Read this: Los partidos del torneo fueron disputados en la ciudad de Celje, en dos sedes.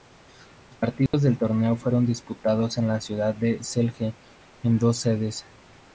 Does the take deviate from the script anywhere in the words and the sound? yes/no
yes